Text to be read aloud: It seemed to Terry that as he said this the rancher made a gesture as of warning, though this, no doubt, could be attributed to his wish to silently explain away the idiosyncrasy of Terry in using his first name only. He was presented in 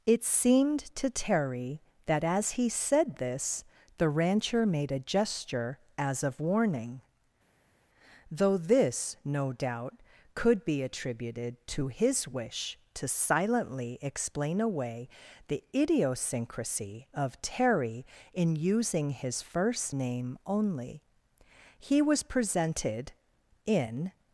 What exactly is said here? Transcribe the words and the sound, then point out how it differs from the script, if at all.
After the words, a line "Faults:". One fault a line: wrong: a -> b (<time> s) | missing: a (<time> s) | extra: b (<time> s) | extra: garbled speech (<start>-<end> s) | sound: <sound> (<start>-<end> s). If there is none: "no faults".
It seemed to Terry that as he said this the rancher made a gesture as of warning, though this, no doubt, could be attributed to his wish to silently explain away the idiosyncrasy of Terry in using his first name only. He was presented in
Faults:
no faults